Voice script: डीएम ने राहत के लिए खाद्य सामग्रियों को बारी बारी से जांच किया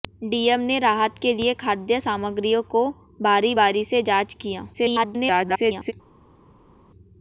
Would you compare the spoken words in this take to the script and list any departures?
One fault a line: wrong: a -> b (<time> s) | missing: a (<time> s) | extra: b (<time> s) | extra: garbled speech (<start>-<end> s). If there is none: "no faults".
extra: garbled speech (4.7-5.9 s)